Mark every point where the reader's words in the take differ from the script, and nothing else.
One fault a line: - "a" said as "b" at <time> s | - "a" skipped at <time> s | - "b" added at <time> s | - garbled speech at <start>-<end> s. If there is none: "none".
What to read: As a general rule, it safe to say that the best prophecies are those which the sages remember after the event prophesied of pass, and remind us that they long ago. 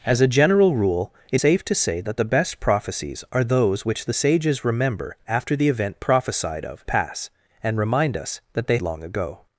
none